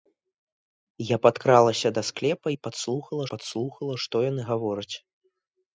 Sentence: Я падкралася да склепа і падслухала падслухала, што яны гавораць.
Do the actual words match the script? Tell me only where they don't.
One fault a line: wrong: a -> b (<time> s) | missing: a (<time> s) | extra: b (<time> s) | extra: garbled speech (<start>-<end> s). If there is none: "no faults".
no faults